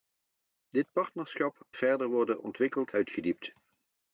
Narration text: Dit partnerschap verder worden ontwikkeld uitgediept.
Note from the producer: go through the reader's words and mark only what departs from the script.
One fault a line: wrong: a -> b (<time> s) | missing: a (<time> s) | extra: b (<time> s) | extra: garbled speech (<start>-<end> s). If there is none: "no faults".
no faults